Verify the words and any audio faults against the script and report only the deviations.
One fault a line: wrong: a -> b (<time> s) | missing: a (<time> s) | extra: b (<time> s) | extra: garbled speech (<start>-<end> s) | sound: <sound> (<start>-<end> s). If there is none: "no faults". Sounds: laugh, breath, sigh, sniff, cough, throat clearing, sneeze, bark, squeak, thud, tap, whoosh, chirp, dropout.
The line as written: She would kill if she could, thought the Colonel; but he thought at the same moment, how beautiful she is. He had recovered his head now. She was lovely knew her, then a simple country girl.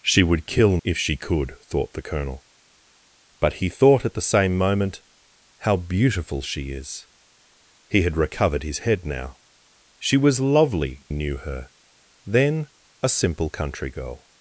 no faults